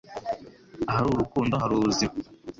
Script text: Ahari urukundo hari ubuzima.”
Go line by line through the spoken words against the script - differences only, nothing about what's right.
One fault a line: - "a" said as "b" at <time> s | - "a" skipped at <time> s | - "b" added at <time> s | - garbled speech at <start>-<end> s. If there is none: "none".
none